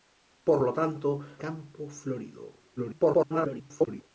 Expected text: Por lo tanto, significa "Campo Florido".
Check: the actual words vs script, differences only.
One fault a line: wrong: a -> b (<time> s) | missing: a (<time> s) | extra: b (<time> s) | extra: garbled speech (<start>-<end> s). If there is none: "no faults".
missing: significa (1.2 s)
extra: garbled speech (2.8-4.1 s)